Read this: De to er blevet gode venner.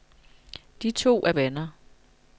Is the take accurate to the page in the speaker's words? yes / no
no